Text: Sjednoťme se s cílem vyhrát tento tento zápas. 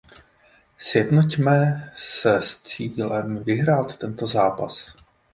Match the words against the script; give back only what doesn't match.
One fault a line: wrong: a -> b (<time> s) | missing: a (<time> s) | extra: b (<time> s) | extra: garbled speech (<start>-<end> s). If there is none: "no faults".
missing: tento (4.3 s)